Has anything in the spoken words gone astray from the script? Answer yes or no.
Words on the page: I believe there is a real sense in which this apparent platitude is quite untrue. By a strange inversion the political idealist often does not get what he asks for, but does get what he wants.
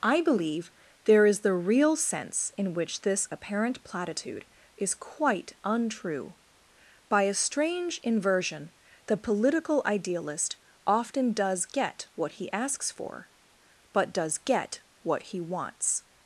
yes